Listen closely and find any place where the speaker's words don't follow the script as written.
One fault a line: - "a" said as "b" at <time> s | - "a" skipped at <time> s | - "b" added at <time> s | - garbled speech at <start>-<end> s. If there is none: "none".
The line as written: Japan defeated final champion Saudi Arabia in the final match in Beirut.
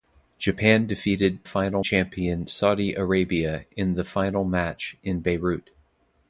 none